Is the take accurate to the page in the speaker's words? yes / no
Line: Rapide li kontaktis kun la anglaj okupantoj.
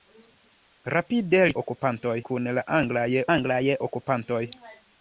no